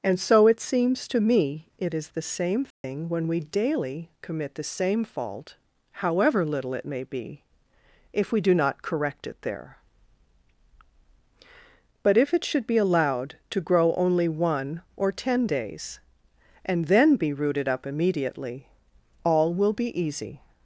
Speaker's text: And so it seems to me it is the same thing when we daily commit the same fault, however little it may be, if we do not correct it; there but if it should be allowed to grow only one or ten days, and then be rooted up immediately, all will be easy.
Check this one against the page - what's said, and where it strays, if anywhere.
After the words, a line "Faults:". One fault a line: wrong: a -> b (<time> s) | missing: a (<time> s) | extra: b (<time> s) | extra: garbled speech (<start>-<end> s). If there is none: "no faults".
And so it seems to me it is the same thing when we daily commit the same fault, however little it may be, if we do not correct it; there but if it should be allowed to grow only one or ten days, and then be rooted up immediately, all will be easy.
Faults:
no faults